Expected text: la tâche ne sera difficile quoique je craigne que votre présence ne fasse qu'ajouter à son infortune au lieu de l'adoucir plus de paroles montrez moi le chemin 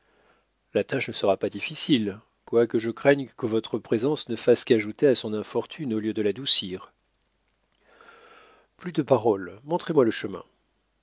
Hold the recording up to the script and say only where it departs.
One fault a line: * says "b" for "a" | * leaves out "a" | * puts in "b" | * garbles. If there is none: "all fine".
* puts in "pas"